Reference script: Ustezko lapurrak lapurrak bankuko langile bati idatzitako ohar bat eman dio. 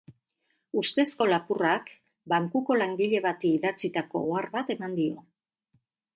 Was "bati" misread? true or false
false